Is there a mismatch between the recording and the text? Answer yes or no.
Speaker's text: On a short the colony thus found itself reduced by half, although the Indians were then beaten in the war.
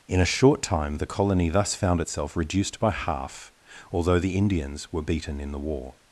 yes